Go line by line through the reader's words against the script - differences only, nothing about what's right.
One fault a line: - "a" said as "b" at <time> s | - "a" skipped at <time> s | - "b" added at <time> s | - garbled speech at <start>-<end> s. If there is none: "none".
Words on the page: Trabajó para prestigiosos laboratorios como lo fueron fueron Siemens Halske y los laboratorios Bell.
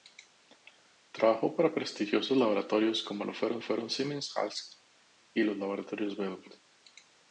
none